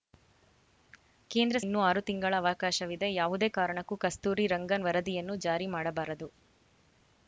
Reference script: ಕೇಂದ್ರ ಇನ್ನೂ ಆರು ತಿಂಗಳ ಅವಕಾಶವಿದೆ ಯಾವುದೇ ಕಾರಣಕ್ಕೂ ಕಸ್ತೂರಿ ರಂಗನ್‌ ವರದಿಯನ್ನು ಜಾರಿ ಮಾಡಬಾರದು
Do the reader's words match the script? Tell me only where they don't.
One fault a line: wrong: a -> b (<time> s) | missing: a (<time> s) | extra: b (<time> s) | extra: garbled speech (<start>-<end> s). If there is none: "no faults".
no faults